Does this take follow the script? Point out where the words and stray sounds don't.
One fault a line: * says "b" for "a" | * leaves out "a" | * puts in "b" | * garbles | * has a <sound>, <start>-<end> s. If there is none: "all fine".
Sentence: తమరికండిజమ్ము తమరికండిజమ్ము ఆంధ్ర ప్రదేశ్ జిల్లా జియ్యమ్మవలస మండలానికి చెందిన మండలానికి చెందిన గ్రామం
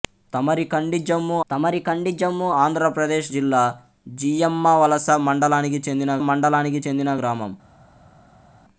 all fine